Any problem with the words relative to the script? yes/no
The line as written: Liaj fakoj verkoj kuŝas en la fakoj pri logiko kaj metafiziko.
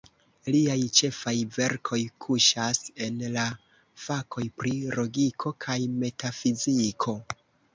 yes